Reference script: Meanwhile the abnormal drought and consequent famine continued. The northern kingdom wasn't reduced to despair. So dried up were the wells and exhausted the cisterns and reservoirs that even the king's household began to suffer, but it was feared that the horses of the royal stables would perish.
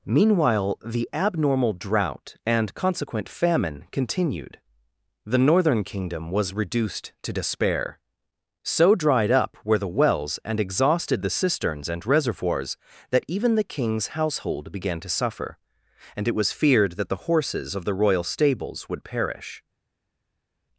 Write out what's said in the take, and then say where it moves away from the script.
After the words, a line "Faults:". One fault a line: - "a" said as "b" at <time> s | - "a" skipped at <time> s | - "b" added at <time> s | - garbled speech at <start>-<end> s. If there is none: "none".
Meanwhile the abnormal drought and consequent famine continued. The northern kingdom was reduced to despair. So dried up were the wells and exhausted the cisterns and reservoirs that even the king's household began to suffer, and it was feared that the horses of the royal stables would perish.
Faults:
- "wasn't" said as "was" at 6.3 s
- "but" said as "and" at 16.1 s